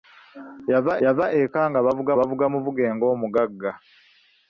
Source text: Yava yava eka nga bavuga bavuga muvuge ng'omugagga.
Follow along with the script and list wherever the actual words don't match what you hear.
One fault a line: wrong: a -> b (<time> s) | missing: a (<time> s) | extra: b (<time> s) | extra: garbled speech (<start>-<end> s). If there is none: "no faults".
no faults